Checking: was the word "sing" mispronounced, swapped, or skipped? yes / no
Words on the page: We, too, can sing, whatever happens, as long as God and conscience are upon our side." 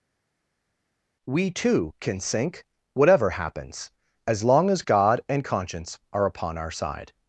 yes